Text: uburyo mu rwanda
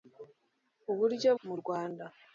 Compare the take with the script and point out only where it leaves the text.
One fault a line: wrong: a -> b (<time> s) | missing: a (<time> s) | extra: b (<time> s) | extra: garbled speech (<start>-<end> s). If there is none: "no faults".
no faults